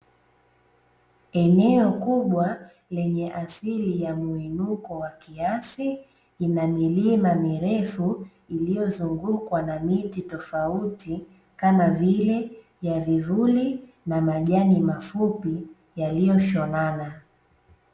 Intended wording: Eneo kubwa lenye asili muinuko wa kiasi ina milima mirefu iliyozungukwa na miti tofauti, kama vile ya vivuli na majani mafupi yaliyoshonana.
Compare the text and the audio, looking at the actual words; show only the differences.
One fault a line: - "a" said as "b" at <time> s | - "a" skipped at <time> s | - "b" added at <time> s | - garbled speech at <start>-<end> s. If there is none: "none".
- "ya" added at 4.0 s